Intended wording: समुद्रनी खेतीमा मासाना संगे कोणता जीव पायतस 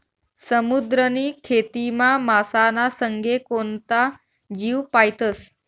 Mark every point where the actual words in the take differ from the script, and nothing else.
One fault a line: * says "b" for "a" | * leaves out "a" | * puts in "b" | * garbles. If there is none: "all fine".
all fine